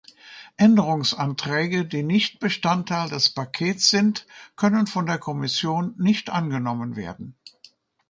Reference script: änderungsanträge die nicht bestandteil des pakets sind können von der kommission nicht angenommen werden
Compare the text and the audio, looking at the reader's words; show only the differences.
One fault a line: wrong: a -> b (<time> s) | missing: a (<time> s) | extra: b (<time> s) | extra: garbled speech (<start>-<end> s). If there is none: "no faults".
no faults